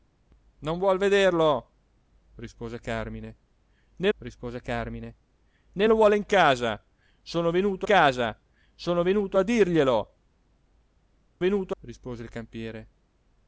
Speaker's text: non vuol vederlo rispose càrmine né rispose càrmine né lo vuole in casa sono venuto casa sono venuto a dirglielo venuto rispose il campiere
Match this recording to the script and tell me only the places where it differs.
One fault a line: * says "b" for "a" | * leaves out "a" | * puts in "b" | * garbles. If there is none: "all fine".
all fine